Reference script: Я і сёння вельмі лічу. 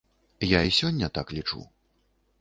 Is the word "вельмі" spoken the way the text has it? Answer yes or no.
no